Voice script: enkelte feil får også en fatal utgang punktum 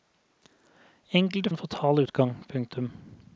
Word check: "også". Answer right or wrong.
wrong